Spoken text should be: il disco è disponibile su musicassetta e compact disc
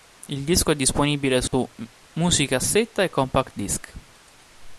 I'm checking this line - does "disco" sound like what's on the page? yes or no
yes